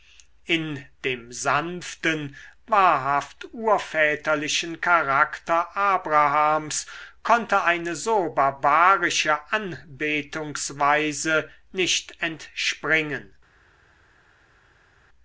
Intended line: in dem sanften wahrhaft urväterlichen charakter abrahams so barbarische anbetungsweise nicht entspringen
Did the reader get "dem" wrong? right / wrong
right